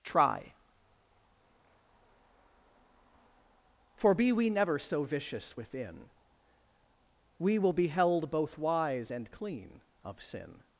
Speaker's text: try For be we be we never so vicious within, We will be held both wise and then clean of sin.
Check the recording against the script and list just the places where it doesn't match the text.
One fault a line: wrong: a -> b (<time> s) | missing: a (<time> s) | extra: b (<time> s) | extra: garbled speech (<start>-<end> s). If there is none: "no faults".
missing: be we (4.5 s)
missing: then (9.3 s)